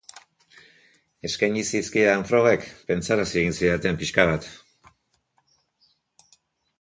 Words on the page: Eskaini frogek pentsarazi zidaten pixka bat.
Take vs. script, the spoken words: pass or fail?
fail